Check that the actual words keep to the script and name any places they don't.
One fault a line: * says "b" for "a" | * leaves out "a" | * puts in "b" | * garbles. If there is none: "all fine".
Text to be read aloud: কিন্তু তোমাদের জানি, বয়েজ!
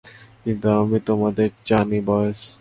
* puts in "আমি"